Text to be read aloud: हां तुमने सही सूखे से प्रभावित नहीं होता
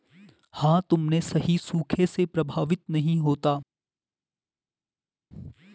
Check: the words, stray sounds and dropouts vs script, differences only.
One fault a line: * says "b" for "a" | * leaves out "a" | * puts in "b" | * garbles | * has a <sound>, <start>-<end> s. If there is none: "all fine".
all fine